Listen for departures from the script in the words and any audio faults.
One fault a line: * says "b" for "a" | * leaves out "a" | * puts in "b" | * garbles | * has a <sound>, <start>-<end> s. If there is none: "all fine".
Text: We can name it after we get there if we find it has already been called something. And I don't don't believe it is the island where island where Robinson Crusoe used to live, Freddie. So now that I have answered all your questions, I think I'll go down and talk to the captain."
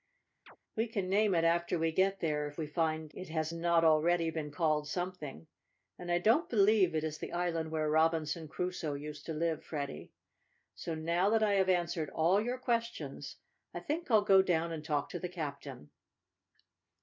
* has a chirp, 0.5-0.6 s
* puts in "not"
* leaves out "don't"
* leaves out "island where"